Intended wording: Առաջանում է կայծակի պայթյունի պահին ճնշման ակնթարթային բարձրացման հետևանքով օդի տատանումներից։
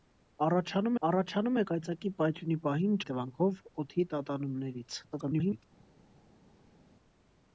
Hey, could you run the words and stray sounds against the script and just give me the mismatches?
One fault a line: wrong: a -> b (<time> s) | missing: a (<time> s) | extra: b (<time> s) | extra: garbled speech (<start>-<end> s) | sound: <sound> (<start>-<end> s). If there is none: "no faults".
extra: առաջանում (1.1 s)
missing: ճնշման ակնթարթային բարձրացման (3.0 s)
extra: garbled speech (5.1-5.6 s)